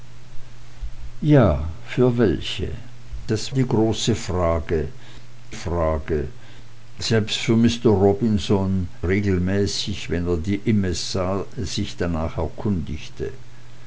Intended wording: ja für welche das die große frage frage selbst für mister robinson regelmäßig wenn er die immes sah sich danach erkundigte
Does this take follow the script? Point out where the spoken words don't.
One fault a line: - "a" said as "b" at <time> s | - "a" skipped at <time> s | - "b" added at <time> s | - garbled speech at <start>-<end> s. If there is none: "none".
none